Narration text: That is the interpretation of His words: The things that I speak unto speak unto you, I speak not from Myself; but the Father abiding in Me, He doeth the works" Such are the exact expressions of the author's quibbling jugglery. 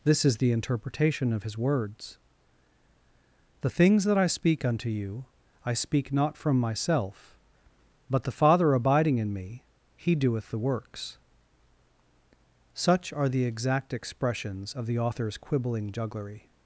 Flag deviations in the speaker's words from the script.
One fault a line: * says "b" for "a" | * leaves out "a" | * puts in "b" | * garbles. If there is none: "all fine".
* says "This" for "That"
* leaves out "speak unto"